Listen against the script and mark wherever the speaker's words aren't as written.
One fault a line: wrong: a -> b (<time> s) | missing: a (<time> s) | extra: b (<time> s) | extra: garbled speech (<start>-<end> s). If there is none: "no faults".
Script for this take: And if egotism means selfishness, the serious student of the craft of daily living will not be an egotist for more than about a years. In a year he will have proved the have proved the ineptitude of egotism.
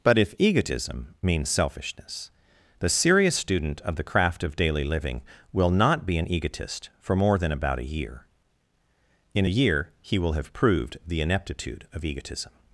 wrong: And -> But (0.0 s)
wrong: years -> year (7.8 s)
missing: have proved the (11.2 s)